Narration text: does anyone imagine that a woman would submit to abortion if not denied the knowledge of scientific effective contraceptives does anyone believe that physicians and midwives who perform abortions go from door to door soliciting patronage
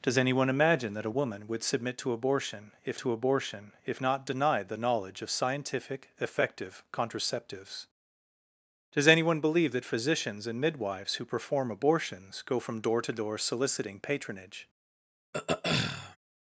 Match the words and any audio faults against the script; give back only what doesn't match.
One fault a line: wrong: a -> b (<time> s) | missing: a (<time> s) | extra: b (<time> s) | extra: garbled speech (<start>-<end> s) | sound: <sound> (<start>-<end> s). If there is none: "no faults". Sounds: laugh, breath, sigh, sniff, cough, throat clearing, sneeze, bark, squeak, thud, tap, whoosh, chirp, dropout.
extra: to abortion if (3.0 s)
sound: throat clearing (15.3-16.2 s)